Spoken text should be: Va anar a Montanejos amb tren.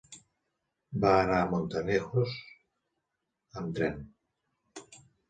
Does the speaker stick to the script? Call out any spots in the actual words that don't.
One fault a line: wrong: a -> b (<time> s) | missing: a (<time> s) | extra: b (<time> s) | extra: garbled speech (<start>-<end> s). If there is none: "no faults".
no faults